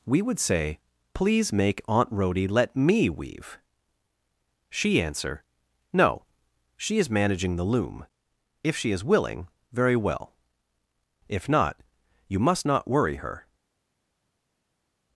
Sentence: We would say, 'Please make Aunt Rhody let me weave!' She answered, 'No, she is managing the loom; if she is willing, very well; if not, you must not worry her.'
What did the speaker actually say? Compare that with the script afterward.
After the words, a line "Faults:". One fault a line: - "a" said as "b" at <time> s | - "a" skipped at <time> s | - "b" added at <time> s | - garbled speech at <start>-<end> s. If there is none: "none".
We would say, 'Please make Aunt Rhody let me weave!' She answer, 'No, she is managing the loom; if she is willing, very well; if not, you must not worry her.'
Faults:
- "answered" said as "answer" at 5.0 s